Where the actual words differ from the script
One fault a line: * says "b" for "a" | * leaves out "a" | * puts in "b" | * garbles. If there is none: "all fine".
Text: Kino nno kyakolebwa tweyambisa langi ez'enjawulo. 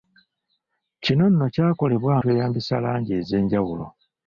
all fine